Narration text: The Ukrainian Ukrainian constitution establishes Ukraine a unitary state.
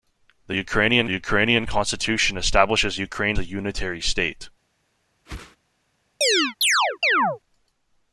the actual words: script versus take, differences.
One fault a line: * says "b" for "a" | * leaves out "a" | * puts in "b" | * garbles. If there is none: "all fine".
all fine